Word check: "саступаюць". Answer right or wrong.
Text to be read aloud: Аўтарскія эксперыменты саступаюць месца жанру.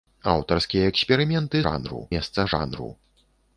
wrong